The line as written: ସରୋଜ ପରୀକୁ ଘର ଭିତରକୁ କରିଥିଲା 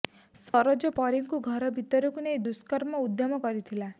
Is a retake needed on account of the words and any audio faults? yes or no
yes